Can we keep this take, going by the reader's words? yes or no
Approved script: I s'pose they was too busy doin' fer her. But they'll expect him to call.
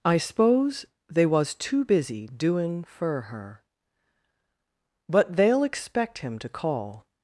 yes